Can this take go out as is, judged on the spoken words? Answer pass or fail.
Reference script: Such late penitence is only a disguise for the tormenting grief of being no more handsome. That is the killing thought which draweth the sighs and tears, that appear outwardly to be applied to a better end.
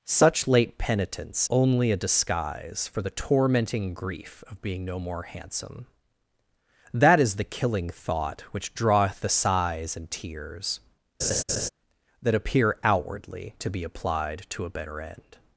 fail